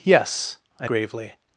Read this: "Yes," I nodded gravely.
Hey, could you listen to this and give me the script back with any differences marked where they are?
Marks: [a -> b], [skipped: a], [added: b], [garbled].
"Yes," I [skipped: nodded] gravely.